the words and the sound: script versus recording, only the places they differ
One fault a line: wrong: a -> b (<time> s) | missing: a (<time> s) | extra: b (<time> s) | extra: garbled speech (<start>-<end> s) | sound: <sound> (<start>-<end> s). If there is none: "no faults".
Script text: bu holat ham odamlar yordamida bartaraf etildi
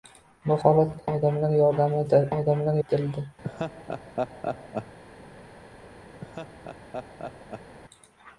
missing: ham (0.9 s)
wrong: bartaraf -> odamlar (2.4 s)
sound: laugh (3.4-5.0 s)
sound: laugh (6.2-7.7 s)